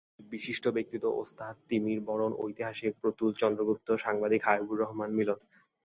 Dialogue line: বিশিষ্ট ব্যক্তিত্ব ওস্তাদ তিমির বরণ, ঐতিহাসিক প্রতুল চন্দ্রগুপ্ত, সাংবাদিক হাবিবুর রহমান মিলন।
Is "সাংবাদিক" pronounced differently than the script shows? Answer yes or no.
no